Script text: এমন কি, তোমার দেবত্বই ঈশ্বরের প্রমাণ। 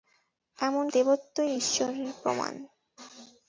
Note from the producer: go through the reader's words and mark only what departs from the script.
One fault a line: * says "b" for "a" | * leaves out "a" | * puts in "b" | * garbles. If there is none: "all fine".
* leaves out "কি তোমার"